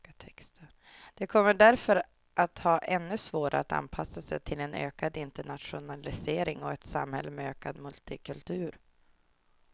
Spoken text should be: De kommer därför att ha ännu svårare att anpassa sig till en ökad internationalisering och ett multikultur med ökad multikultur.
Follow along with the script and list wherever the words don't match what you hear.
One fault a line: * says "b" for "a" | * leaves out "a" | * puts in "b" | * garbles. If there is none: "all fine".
* says "samhälle" for "multikultur"